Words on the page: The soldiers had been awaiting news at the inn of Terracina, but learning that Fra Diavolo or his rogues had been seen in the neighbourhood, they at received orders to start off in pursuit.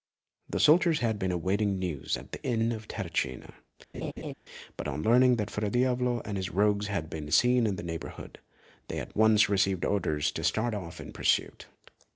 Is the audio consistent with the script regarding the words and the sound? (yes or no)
no